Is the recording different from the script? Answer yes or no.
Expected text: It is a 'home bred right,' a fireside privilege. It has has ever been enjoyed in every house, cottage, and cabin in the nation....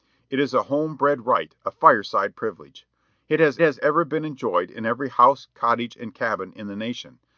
no